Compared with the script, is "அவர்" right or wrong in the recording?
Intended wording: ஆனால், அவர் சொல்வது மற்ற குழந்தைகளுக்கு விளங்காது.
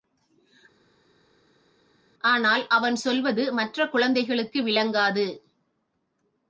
wrong